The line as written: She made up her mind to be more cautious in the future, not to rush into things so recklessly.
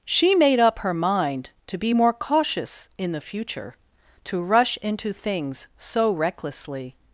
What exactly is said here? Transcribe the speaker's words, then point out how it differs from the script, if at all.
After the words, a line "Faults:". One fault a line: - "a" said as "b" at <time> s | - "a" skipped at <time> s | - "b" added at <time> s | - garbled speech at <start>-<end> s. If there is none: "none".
She made up her mind to be more cautious in the future, to rush into things so recklessly.
Faults:
- "not" skipped at 3.8 s